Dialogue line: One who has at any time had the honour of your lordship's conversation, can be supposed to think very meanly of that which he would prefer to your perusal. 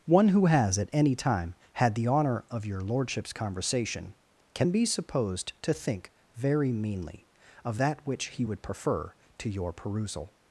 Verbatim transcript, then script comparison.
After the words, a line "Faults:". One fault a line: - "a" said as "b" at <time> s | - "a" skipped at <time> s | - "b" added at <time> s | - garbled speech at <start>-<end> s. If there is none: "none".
One who has at any time had the honour of your lordship's conversation, can be supposed to think very meanly of that which he would prefer to your perusal.
Faults:
none